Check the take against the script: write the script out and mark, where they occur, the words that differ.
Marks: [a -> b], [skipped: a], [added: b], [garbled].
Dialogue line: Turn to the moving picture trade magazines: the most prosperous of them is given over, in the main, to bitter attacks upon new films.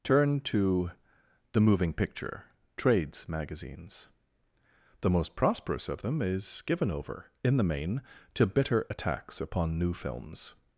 Turn to the moving picture [trade -> trades] magazines: the most prosperous of them is given over, in the main, to bitter attacks upon new films.